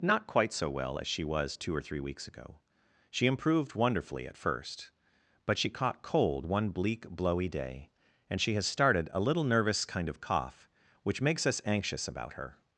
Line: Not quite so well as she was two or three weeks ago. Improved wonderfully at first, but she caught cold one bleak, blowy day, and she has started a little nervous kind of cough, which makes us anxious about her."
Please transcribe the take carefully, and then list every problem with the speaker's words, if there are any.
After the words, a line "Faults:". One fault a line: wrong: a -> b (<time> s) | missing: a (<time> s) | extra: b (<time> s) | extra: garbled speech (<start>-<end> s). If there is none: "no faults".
Not quite so well as she was two or three weeks ago. She improved wonderfully at first, but she caught cold one bleak, blowy day, and she has started a little nervous kind of cough, which makes us anxious about her."
Faults:
extra: She (3.1 s)